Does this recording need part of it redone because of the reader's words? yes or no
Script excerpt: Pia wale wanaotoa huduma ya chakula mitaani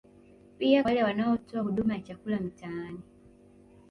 no